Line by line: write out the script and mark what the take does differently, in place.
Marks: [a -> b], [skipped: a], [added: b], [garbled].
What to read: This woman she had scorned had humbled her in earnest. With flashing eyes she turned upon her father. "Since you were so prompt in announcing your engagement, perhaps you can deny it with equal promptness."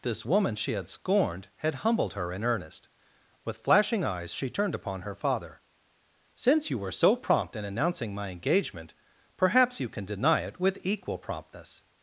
This woman she had scorned had humbled her in earnest. With flashing eyes she turned upon her father. "Since you were so prompt in announcing [your -> my] engagement, perhaps you can deny it with equal promptness."